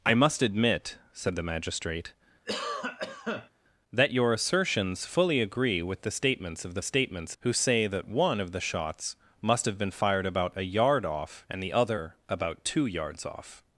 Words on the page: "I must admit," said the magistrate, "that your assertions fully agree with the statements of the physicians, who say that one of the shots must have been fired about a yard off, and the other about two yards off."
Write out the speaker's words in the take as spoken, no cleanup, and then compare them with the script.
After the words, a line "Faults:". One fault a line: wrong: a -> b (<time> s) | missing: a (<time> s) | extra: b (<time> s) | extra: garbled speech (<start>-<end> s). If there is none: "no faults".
"I must admit," said the magistrate, "that your assertions fully agree with the statements of the statements, who say that one of the shots must have been fired about a yard off, and the other about two yards off."
Faults:
wrong: physicians -> statements (6.8 s)